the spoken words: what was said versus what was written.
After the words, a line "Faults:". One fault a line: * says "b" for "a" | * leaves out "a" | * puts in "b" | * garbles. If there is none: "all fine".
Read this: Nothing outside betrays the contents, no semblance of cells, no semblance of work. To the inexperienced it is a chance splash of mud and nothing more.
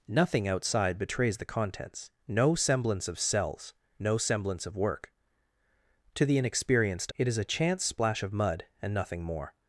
Nothing outside betrays the contents, no semblance of cells, no semblance of work. To the inexperienced it is a chance splash of mud and nothing more.
Faults:
all fine